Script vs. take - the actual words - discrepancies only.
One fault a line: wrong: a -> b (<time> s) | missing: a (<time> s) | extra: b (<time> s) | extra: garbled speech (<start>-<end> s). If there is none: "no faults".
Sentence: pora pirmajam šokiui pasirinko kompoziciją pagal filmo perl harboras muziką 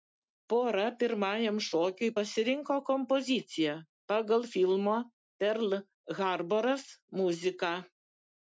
no faults